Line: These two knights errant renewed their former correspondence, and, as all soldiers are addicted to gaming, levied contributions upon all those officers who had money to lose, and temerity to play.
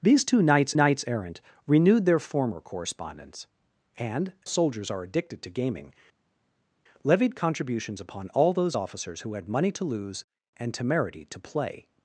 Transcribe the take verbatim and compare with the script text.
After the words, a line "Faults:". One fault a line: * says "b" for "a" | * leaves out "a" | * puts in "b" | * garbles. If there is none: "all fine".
These two knights knights errant renewed their former correspondence, and, soldiers are addicted to gaming, levied contributions upon all those officers who had money to lose, and temerity to play.
Faults:
* puts in "knights"
* leaves out "as all"